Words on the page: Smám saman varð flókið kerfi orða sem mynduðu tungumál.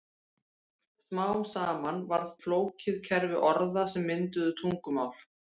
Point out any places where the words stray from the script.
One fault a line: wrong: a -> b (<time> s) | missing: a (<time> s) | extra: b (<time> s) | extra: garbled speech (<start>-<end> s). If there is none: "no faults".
no faults